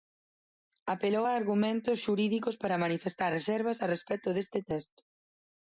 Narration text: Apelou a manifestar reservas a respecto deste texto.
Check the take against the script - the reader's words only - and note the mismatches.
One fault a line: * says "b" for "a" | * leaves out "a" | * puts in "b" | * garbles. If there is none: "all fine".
* puts in "argumentos xurídicos para"